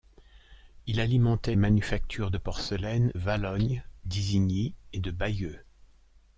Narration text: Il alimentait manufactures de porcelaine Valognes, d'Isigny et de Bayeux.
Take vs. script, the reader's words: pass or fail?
pass